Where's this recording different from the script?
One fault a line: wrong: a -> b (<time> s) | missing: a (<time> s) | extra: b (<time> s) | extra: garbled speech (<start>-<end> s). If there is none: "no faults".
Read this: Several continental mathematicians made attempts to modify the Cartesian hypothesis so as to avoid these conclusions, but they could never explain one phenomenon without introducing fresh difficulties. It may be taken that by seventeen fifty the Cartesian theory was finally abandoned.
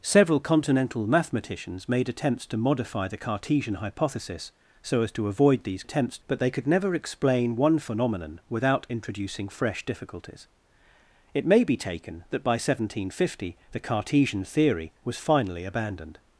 wrong: conclusions -> attempts (5.8 s)